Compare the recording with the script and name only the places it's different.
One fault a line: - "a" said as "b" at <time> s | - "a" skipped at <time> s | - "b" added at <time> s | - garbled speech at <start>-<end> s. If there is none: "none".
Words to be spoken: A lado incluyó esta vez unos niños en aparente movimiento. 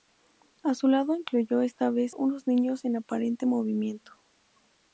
- "su" added at 0.7 s